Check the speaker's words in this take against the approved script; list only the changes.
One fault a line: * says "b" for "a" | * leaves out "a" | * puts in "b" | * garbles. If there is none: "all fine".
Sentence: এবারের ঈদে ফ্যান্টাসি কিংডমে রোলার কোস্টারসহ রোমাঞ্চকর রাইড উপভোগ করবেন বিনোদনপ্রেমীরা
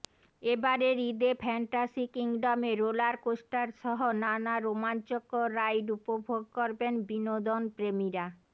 * puts in "নানা"